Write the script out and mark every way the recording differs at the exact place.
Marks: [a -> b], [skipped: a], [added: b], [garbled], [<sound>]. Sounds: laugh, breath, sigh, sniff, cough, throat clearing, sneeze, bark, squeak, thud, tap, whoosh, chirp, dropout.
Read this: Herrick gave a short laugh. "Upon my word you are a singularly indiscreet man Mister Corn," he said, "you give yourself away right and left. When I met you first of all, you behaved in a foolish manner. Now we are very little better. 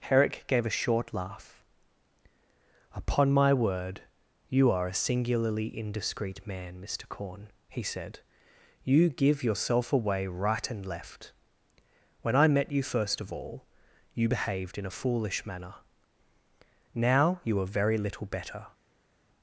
Herrick gave a short laugh. "Upon my word you are a singularly indiscreet man Mister Corn," he said, "you give yourself away right and left. When I met you first of all, you behaved in a foolish manner. Now [we -> you] are very little better.